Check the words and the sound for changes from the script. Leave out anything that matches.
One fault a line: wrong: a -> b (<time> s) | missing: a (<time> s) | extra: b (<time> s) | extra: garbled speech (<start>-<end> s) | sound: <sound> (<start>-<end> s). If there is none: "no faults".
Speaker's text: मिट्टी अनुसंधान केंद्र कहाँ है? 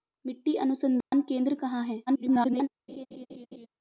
sound: dropout (1.0-1.1 s)
extra: garbled speech (2.1-2.7 s)
sound: laugh (2.9-3.7 s)